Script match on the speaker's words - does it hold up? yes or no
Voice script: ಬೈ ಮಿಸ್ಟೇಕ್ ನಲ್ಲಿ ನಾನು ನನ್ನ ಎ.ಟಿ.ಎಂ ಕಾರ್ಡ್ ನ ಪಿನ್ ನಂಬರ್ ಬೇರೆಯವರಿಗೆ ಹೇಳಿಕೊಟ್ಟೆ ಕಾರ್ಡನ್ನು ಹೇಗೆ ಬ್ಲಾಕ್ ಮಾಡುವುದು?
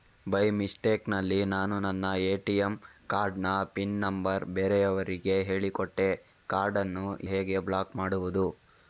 yes